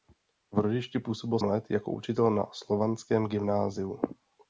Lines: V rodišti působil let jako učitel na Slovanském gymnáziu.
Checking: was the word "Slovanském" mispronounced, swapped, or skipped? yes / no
no